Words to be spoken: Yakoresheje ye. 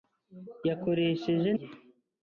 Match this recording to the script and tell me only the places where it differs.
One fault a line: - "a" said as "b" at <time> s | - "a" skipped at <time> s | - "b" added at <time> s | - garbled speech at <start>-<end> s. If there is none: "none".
none